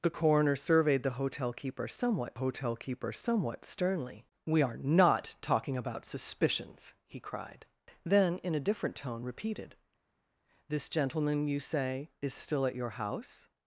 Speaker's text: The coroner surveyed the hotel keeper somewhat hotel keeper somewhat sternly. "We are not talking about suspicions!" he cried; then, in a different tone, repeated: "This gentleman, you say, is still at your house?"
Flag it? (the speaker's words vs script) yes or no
no